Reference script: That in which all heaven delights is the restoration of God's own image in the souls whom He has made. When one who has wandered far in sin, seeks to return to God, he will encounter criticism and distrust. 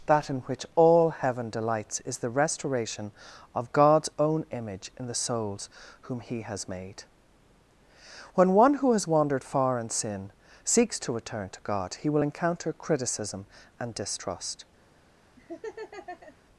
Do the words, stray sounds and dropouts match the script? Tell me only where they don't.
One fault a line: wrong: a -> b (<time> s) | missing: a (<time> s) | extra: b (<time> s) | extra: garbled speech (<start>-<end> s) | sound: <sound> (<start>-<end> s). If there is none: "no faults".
sound: laugh (15.4-16.4 s)